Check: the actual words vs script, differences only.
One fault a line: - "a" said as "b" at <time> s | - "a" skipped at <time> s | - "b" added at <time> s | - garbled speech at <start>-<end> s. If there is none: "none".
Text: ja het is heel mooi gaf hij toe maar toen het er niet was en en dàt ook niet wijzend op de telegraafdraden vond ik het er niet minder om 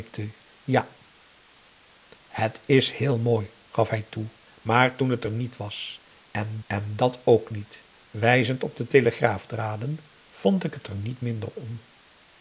none